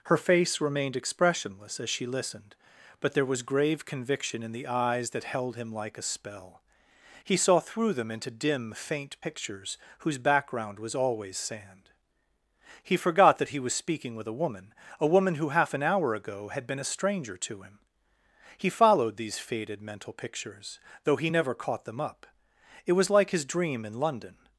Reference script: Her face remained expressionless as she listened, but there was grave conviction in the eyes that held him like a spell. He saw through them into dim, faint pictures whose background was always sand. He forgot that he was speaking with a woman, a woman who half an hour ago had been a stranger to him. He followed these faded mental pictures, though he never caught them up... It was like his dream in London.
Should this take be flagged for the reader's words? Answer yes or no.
no